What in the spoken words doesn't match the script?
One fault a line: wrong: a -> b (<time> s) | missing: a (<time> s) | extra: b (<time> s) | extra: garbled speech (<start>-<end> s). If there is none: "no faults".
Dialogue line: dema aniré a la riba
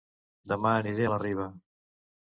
no faults